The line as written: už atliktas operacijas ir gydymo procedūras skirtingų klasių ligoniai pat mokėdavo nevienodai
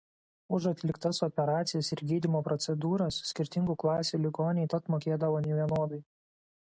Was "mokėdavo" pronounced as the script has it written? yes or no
yes